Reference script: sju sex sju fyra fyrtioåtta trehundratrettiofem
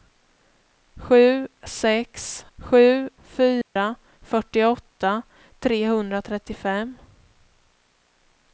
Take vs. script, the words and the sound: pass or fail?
fail